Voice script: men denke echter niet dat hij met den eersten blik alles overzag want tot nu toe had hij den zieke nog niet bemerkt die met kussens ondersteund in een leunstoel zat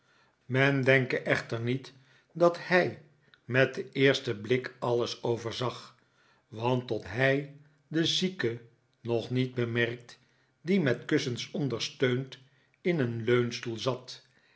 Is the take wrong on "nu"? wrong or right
wrong